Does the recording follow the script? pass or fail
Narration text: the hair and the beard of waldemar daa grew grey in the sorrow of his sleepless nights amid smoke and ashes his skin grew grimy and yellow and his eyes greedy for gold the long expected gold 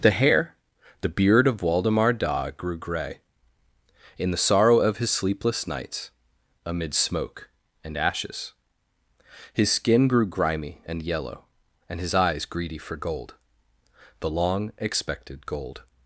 fail